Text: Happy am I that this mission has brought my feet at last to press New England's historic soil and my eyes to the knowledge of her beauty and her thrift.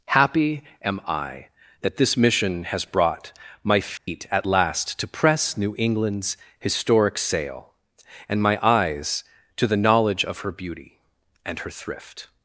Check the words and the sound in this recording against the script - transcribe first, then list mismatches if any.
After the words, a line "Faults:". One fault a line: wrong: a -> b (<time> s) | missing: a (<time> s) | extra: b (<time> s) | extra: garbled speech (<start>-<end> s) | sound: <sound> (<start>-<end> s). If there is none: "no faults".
Happy am I that this mission has brought my feet at last to press New England's historic sail and my eyes to the knowledge of her beauty and her thrift.
Faults:
sound: dropout (4.0-4.1 s)
wrong: soil -> sail (7.2 s)